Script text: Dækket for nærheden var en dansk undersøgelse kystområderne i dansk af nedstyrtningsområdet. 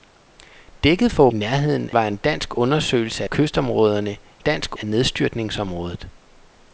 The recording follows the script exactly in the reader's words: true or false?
true